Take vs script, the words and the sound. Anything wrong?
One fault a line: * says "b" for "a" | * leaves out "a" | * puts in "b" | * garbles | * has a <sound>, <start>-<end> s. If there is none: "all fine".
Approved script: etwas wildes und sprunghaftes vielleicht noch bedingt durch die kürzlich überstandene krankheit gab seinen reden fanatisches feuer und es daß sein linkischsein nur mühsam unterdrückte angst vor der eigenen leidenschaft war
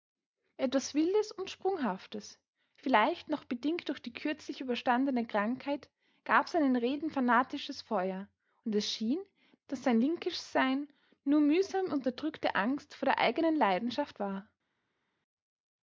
* puts in "schien"